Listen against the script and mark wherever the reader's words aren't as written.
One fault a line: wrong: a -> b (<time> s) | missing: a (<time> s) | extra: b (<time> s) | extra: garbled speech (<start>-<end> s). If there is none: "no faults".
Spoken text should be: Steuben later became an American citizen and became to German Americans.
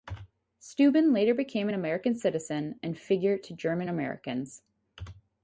wrong: became -> figure (3.0 s)